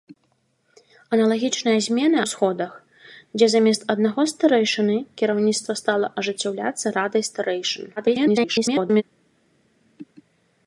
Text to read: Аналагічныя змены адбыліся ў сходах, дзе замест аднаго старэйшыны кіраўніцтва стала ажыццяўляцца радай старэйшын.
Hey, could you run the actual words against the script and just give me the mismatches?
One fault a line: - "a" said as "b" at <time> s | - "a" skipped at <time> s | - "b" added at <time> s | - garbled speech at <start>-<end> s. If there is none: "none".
- "адбыліся" skipped at 2.2 s
- garbled speech at 8.0-9.0 s